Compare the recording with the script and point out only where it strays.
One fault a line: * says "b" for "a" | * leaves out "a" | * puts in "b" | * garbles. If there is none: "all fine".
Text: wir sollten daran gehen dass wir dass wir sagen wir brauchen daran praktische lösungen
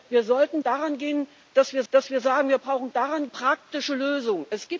all fine